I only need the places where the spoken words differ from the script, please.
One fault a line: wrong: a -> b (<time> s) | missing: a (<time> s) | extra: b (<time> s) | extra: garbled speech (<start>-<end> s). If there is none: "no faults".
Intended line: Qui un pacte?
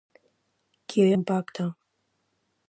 no faults